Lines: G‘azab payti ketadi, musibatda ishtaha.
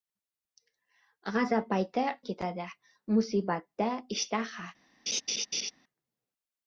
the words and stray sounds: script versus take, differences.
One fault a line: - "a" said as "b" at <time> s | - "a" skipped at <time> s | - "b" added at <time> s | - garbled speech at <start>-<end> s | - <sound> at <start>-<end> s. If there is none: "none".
- laugh at 5.1-5.7 s